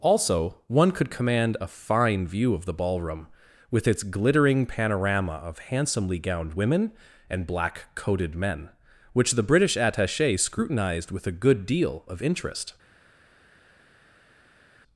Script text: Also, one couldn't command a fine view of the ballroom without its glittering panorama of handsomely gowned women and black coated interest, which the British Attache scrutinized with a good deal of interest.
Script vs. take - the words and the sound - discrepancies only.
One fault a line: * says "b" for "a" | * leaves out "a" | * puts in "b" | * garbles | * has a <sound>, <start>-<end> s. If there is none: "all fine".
* says "could" for "couldn't"
* says "with" for "without"
* says "men" for "interest"